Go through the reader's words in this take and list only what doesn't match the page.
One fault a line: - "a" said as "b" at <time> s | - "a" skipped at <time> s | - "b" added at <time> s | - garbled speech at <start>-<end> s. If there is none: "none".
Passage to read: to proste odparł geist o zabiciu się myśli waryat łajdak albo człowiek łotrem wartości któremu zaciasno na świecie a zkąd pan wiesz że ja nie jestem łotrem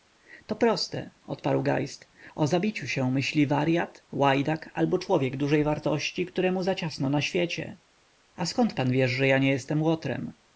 - "łotrem" said as "dużej" at 5.4 s